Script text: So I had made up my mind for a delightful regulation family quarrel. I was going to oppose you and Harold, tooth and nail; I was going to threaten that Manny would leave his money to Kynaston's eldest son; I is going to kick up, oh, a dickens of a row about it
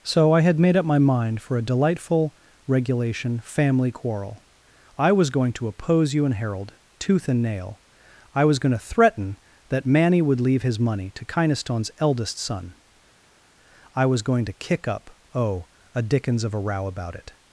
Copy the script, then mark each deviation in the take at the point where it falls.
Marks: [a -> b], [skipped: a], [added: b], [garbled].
So I had made up my mind for a delightful regulation family quarrel. I was going to oppose you and Harold, tooth and nail; I was going to threaten that Manny would leave his money to Kynaston's eldest son; I [is -> was] going to kick up, oh, a dickens of a row about it